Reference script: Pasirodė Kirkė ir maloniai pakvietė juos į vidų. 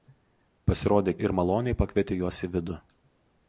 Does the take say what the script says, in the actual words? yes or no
no